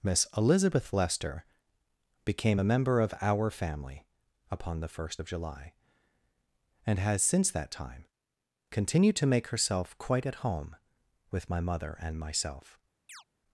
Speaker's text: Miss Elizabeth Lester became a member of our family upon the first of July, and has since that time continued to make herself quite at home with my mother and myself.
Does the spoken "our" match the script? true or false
true